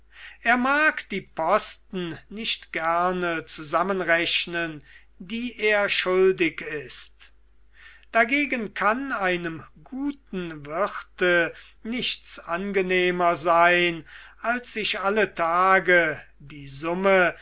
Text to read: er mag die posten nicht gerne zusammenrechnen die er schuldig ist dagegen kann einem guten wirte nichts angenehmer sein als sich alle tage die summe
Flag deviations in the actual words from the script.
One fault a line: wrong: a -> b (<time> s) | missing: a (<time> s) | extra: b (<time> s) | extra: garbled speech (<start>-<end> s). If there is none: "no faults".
no faults